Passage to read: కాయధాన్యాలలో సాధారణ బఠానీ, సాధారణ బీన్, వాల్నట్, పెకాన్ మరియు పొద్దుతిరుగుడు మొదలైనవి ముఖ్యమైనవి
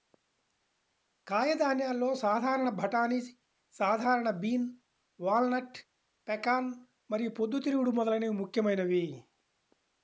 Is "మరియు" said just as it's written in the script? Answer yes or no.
yes